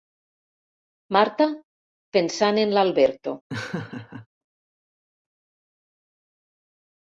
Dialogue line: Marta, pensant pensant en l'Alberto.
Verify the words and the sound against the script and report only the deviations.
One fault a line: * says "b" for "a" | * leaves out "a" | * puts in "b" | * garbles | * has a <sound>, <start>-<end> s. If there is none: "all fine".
* leaves out "pensant"
* has a laugh, 3.5-4.3 s